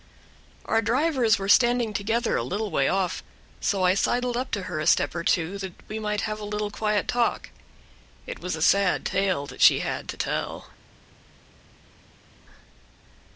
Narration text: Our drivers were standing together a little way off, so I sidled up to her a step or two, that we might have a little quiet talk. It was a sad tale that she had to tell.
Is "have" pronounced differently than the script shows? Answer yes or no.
no